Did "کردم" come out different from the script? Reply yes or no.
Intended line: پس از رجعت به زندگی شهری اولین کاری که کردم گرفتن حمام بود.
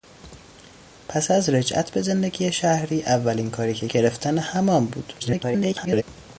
yes